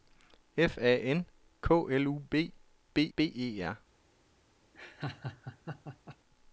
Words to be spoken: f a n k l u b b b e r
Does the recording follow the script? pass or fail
pass